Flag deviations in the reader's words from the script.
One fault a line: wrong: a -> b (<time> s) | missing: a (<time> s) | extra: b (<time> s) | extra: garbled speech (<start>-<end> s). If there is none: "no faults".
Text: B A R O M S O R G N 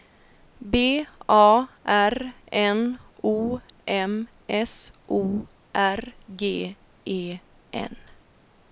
extra: N (2.5 s)
extra: E (7.0 s)